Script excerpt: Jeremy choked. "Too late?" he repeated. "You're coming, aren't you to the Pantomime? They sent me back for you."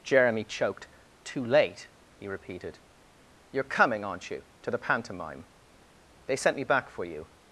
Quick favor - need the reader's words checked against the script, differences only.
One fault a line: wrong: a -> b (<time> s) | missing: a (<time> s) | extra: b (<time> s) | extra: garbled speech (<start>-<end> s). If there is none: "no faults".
no faults